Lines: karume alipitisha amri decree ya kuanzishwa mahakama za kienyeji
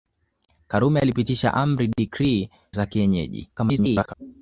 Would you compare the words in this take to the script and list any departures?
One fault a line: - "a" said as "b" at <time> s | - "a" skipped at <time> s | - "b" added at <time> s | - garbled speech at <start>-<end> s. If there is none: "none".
- "ya kuanzishwa mahakama" skipped at 2.5 s
- garbled speech at 3.6-4.1 s